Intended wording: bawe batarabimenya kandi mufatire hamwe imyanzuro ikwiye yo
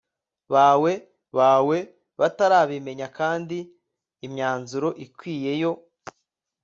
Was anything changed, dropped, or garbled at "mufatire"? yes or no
yes